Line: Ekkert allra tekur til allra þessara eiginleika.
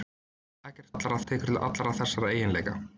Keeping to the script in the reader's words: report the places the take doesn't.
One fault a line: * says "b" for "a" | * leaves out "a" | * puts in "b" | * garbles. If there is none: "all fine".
all fine